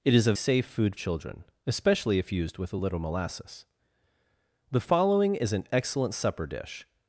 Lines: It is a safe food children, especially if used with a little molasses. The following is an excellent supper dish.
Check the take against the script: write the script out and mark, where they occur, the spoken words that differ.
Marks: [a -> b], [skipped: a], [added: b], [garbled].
It is a safe food children, especially if used with a little molasses. The following is an excellent supper dish.